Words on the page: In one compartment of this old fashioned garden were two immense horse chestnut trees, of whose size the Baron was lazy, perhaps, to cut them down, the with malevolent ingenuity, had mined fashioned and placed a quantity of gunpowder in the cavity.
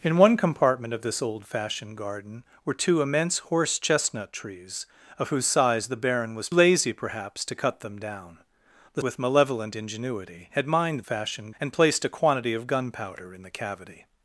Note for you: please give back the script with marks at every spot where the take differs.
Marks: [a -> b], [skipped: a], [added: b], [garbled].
In one compartment of this old fashioned garden were two immense horse chestnut trees, of whose size the Baron was lazy, perhaps, to cut them down, the with malevolent ingenuity, had mined fashioned and placed a quantity of gunpowder in the cavity.